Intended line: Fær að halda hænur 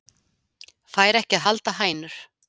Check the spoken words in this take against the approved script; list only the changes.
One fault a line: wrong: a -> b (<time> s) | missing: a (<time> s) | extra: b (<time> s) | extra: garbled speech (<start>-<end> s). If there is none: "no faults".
extra: ekki (1.2 s)